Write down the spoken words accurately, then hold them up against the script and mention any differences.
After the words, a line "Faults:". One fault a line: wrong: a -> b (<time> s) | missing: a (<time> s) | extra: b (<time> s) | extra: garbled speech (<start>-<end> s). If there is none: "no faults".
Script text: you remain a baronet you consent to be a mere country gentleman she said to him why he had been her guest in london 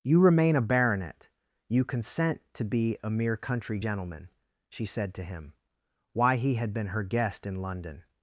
you remain a baronet you consent to be a mere country gentleman she said to him why he had been her guest in london
Faults:
no faults